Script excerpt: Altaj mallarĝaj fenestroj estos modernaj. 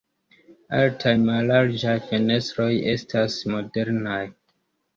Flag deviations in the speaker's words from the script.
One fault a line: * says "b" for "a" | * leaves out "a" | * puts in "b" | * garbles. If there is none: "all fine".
* says "estas" for "estos"